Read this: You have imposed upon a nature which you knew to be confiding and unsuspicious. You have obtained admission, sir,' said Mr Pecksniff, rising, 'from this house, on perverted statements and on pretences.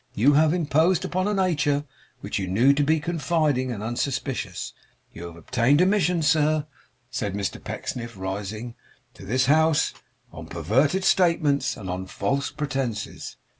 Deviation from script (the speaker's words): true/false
true